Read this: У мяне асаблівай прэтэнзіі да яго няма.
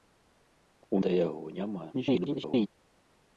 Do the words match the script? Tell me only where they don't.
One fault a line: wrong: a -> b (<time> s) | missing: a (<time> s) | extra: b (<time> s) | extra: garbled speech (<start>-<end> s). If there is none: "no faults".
missing: мяне асаблівай прэтэнзіі (1.0 s)
extra: garbled speech (1.9-2.7 s)